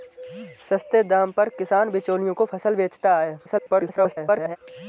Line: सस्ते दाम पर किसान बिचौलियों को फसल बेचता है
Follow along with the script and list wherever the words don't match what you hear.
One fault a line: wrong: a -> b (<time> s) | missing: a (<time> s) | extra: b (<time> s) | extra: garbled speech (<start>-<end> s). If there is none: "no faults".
extra: garbled speech (3.4-4.6 s)